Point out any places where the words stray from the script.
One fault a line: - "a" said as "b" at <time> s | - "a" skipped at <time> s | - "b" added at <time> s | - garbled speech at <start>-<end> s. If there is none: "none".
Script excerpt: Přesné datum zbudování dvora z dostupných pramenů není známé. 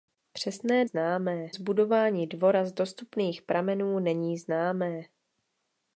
- "datum" said as "známé" at 0.8 s